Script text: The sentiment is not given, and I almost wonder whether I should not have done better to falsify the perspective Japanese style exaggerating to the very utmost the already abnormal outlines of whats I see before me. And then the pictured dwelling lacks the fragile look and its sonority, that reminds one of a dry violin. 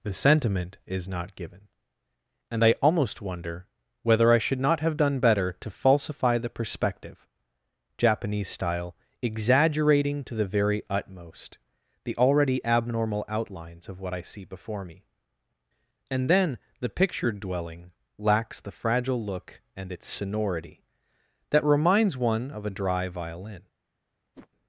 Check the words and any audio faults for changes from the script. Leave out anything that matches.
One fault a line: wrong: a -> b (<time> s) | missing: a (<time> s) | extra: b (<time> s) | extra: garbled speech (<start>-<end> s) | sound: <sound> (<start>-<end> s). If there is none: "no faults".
wrong: whats -> what (14.0 s)
sound: whoosh (24.3-24.5 s)